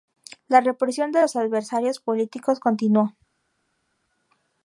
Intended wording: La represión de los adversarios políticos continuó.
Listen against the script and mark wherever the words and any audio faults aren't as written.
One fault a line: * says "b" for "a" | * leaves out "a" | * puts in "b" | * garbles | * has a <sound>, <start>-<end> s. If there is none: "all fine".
all fine